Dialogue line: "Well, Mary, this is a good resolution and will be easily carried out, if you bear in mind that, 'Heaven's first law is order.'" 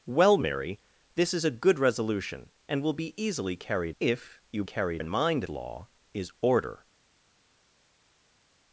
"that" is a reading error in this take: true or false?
true